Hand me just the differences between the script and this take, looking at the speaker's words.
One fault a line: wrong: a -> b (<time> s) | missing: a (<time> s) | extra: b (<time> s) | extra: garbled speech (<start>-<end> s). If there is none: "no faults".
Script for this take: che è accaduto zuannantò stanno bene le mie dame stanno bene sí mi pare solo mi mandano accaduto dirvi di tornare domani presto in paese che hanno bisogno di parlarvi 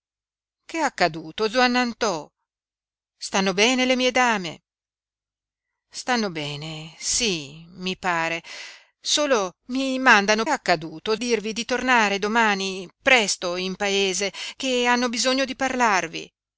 no faults